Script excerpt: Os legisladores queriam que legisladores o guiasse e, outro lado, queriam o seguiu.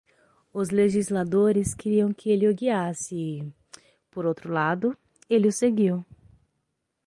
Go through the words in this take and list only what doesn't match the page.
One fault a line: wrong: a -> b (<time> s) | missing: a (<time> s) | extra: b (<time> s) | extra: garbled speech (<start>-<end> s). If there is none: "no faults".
wrong: legisladores -> ele (2.3 s)
extra: por (4.1 s)
wrong: queriam -> ele (5.3 s)